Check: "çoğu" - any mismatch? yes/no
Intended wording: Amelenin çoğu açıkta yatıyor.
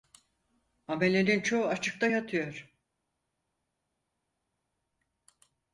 no